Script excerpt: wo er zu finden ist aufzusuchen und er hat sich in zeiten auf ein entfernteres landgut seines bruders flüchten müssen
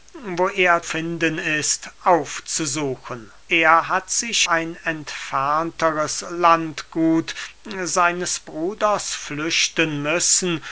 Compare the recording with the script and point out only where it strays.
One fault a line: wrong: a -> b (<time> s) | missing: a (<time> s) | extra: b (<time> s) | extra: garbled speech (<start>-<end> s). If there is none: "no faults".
missing: zu (0.8 s)
missing: und (3.3 s)
missing: in zeiten auf (4.5 s)